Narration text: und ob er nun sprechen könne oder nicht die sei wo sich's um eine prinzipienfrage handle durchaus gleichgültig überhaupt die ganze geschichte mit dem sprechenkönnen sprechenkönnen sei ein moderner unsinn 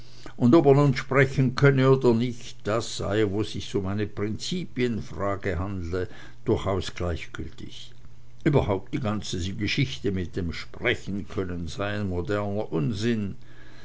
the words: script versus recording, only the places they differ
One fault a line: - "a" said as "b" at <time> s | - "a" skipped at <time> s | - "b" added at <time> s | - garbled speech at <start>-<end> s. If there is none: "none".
- "die" said as "das" at 2.7 s
- "sprechenkönnen" skipped at 11.7 s